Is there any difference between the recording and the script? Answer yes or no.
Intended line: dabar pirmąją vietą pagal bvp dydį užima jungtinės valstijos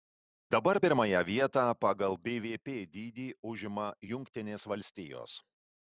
no